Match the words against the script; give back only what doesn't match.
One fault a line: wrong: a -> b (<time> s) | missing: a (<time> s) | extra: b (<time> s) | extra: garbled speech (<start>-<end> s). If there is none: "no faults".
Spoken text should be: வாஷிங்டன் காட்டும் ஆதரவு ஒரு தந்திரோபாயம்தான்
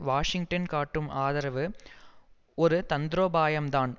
no faults